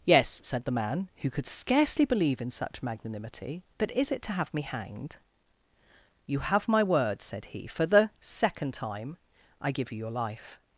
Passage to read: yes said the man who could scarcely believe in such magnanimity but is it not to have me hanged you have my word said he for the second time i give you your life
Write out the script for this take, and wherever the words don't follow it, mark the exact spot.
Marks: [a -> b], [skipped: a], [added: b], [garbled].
yes said the man who could scarcely believe in such magnanimity but is it [skipped: not] to have me hanged you have my word said he for the second time i give you your life